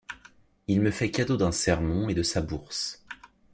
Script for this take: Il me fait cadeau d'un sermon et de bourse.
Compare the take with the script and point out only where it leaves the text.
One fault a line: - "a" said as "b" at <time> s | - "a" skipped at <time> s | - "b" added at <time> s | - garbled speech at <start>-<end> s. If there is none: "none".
- "sa" added at 2.2 s